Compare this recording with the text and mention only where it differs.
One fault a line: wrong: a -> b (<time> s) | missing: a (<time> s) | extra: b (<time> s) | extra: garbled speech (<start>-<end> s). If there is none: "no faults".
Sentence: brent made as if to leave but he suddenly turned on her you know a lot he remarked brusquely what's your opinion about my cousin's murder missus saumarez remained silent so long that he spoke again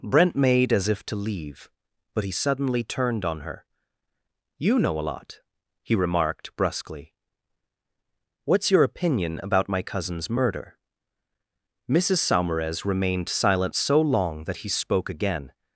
no faults